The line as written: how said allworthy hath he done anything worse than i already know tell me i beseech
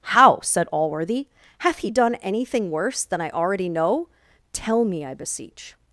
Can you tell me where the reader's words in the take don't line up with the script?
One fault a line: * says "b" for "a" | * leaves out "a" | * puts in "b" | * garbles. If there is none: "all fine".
all fine